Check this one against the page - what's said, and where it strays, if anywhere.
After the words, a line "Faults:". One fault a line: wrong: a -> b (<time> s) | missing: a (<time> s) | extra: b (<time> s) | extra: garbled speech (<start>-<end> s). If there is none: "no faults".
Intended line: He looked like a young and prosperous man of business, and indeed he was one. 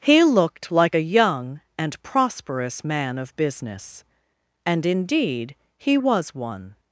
He looked like a young and prosperous man of business, and indeed he was one.
Faults:
no faults